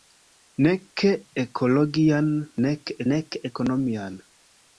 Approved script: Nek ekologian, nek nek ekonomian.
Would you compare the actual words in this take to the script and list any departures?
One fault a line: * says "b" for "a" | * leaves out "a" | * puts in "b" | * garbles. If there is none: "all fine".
all fine